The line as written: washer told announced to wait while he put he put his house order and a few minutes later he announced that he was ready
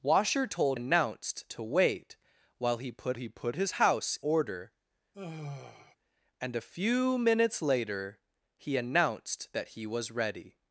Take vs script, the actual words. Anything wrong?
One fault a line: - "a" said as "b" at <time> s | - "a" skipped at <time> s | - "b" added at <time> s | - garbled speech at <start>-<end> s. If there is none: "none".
none